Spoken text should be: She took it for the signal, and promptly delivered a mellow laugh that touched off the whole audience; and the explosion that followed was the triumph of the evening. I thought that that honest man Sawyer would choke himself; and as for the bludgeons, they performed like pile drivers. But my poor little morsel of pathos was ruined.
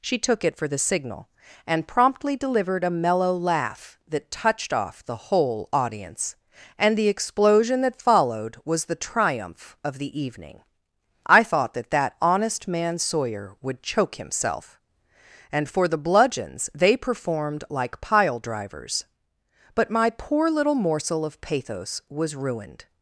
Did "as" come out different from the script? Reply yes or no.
yes